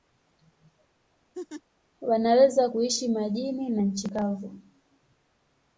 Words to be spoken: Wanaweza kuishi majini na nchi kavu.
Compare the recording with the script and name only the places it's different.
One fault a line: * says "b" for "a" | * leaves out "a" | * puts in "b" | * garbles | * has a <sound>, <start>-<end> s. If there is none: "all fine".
* has a laugh, 1.3-1.6 s